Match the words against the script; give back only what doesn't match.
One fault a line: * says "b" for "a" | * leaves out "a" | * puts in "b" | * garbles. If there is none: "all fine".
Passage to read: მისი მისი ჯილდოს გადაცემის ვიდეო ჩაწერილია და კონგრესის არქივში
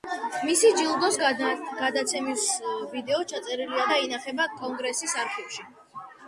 * leaves out "მისი"
* puts in "ინახება"